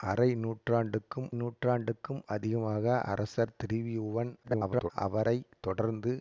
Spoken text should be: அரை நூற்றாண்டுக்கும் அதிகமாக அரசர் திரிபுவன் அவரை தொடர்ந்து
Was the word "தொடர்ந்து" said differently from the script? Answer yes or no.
no